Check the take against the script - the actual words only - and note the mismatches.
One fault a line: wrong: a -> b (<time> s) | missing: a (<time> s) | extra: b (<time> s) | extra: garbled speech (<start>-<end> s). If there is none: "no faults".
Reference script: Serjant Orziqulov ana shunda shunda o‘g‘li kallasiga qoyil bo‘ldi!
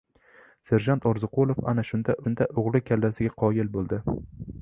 no faults